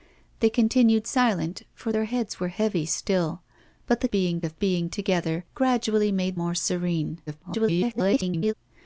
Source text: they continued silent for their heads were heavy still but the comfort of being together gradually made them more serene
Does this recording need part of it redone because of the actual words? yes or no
yes